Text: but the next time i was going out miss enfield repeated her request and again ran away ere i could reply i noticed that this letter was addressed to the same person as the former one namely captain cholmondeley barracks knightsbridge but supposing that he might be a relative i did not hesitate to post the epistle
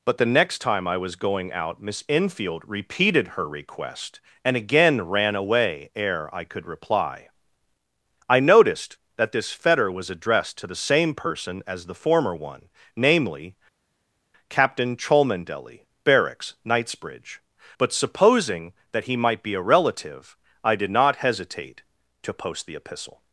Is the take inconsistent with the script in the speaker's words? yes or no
yes